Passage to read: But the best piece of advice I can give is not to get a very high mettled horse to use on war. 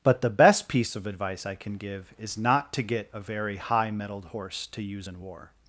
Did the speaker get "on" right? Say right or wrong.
wrong